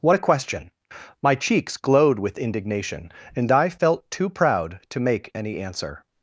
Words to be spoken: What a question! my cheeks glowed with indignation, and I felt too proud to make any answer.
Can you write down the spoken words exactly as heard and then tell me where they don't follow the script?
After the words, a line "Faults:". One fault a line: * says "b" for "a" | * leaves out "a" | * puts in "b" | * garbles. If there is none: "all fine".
What a question! my cheeks glowed with indignation, and I felt too proud to make any answer.
Faults:
all fine